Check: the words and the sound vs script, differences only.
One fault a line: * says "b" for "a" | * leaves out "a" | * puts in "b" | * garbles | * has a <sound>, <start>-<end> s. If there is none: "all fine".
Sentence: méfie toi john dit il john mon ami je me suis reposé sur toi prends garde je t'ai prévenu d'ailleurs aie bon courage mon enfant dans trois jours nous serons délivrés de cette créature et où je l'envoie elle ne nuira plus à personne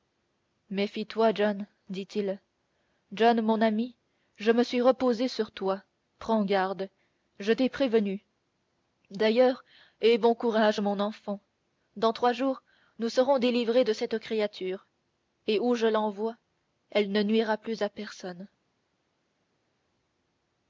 all fine